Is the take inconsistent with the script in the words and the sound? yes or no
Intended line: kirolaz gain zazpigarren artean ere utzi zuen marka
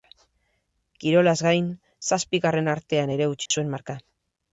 yes